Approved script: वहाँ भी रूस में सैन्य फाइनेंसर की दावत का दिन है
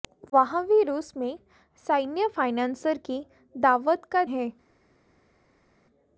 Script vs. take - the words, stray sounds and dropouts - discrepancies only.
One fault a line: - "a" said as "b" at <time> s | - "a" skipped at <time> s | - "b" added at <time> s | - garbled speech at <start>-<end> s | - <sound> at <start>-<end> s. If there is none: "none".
- "दिन" skipped at 4.2 s